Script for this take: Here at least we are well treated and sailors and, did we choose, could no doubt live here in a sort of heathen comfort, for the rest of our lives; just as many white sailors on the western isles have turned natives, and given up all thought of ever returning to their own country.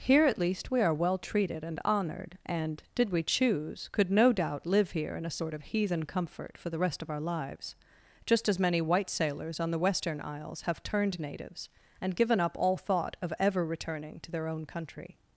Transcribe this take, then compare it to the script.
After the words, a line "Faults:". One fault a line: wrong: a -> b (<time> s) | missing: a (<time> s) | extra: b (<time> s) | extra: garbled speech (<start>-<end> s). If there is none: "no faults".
Here at least we are well treated and honored and, did we choose, could no doubt live here in a sort of heathen comfort, for the rest of our lives; just as many white sailors on the western isles have turned natives, and given up all thought of ever returning to their own country.
Faults:
wrong: sailors -> honored (1.9 s)